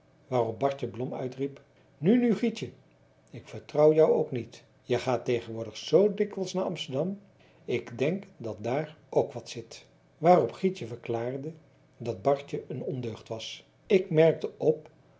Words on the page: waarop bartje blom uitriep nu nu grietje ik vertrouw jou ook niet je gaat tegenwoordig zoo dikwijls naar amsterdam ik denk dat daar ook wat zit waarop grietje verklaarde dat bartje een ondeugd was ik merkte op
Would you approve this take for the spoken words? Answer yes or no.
yes